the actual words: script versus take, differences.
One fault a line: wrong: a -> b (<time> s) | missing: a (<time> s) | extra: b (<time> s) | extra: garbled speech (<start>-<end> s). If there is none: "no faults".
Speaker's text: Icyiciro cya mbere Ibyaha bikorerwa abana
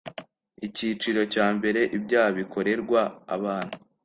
no faults